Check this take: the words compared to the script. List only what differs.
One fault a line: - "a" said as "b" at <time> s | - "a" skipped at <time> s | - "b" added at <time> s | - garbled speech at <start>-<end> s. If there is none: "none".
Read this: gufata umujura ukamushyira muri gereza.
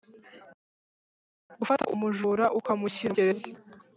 - "muri" skipped at 3.1 s